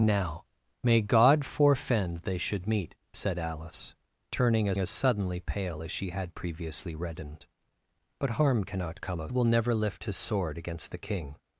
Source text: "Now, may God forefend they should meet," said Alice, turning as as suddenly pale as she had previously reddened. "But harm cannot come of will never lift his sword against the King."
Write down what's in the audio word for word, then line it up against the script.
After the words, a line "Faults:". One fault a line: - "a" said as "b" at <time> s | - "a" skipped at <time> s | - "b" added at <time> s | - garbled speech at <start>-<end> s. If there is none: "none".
"Now, may God forefend they should meet," said Alice, turning as as suddenly pale as she had previously reddened. "But harm cannot come of will never lift his sword against the King."
Faults:
none